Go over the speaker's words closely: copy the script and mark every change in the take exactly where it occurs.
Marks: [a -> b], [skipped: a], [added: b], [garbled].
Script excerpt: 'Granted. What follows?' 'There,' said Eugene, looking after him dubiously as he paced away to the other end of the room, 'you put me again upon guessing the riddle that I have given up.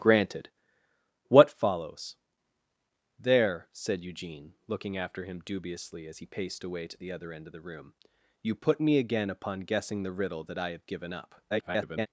'Granted. What follows?' 'There,' said Eugene, looking after him dubiously as he paced away to the other end of the room, 'you put me again upon guessing the riddle that I have given up. [garbled]